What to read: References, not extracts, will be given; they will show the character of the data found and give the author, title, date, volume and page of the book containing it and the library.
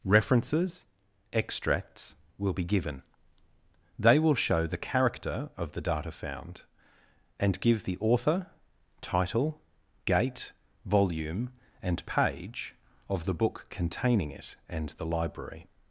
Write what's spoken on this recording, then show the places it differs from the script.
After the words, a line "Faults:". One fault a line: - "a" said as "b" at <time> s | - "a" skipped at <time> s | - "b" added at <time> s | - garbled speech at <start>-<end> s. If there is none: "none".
References, extracts, will be given; they will show the character of the data found and give the author, title, gate, volume and page of the book containing it and the library.
Faults:
- "not" skipped at 0.8 s
- "date" said as "gate" at 10.1 s